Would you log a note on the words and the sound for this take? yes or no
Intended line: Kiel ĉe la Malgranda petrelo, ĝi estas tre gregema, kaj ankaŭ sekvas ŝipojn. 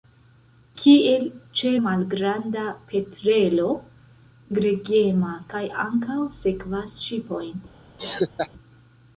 yes